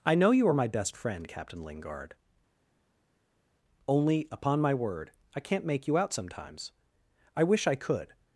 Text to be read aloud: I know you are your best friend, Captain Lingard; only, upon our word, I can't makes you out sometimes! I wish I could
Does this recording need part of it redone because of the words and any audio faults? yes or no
yes